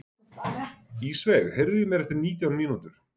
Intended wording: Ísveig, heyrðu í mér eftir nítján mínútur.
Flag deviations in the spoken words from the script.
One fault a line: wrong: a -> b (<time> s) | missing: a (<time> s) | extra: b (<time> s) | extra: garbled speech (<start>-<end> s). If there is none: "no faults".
no faults